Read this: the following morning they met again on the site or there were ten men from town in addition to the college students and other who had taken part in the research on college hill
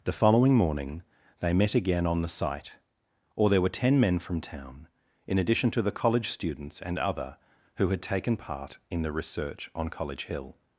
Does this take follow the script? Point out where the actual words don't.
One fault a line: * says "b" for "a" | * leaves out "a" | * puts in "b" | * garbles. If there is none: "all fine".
all fine